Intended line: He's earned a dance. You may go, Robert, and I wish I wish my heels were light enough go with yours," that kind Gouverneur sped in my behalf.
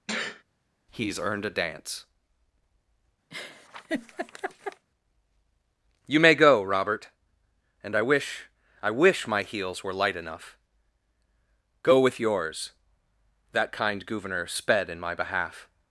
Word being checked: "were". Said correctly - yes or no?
yes